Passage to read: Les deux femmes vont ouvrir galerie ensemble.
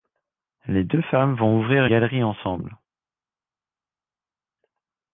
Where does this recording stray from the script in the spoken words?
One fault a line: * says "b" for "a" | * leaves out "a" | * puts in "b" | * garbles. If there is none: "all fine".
all fine